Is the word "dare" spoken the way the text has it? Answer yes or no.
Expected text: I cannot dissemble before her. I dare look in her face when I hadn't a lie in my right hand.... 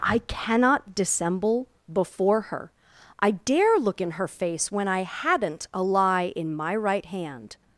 yes